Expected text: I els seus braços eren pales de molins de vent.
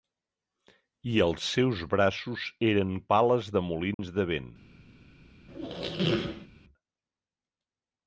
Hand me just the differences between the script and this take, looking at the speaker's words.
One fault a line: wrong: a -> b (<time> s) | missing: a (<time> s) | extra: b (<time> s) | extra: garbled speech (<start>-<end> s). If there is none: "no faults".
no faults